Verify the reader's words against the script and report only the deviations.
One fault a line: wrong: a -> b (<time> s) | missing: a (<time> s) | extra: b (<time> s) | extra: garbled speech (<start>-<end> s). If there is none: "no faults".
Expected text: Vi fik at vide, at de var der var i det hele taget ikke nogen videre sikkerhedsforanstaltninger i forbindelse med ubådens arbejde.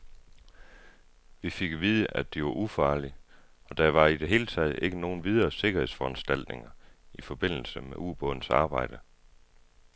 extra: ufarlige og (2.5 s)